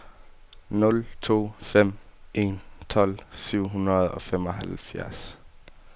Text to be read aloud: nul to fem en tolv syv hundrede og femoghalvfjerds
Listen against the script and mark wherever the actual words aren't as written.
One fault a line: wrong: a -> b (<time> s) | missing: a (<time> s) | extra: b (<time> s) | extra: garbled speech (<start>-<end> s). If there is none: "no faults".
no faults